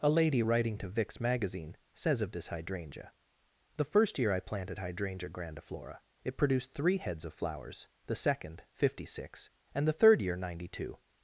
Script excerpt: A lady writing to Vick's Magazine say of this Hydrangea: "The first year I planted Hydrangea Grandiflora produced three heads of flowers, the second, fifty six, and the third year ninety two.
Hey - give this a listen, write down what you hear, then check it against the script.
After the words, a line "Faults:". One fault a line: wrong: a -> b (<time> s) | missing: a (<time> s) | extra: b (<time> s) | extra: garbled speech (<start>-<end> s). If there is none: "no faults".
A lady writing to Vick's Magazine says of this Hydrangea: "The first year I planted Hydrangea Grandiflora it produced three heads of flowers, the second, fifty six, and the third year ninety two.
Faults:
wrong: say -> says (1.9 s)
extra: it (6.2 s)